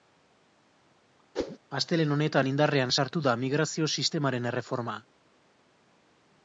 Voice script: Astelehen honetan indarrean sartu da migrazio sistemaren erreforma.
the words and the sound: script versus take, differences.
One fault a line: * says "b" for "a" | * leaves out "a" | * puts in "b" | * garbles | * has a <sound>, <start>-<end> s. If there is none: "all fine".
* has a whoosh, 1.3-1.6 s